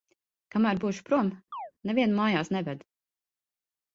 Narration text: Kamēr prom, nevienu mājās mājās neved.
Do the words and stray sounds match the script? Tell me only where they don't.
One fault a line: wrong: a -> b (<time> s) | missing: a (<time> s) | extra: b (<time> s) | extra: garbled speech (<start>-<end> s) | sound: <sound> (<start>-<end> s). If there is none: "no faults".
extra: būšu (0.8 s)
sound: chirp (1.5-1.7 s)
missing: mājās (2.5 s)